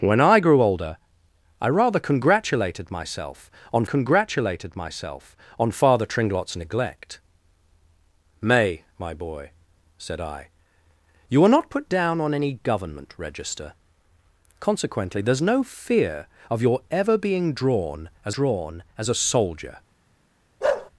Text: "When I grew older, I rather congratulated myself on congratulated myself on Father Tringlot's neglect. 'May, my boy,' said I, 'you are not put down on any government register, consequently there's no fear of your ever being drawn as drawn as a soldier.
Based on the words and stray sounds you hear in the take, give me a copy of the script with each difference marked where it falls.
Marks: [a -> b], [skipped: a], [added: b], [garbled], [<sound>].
"When I grew older, I rather congratulated myself on congratulated myself on Father Tringlot's neglect. 'May, my boy,' said I, 'you are not put down on any government register, consequently there's no fear of your ever being drawn as drawn as a soldier. [bark]